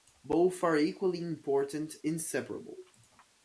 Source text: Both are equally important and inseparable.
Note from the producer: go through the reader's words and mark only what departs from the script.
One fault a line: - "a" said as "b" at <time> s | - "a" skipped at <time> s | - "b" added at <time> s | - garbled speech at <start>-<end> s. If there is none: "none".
- "and" skipped at 1.9 s